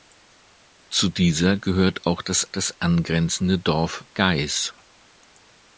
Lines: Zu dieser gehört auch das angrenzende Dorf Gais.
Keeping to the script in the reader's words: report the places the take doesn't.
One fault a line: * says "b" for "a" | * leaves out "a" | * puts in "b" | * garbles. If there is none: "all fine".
* puts in "das"